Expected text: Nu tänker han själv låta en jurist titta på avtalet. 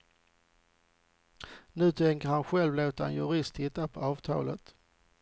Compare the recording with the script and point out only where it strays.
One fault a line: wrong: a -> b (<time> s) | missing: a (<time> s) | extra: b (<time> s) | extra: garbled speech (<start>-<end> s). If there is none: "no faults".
no faults